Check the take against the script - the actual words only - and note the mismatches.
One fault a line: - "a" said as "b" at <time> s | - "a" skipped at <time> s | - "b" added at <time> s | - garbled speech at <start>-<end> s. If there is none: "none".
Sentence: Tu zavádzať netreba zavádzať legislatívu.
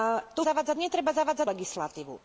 none